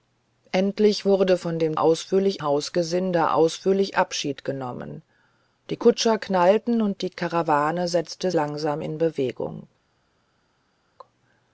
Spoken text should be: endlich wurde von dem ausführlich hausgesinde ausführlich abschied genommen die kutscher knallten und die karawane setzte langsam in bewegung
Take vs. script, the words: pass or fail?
pass